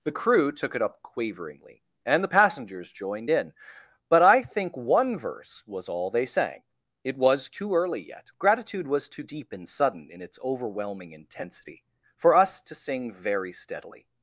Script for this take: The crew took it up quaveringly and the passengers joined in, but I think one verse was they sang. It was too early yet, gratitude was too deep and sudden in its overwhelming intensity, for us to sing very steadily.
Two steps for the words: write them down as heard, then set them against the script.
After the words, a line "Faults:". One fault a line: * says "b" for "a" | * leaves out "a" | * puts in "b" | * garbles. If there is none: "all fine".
The crew took it up quaveringly and the passengers joined in, but I think one verse was all they sang. It was too early yet, gratitude was too deep and sudden in its overwhelming intensity, for us to sing very steadily.
Faults:
* puts in "all"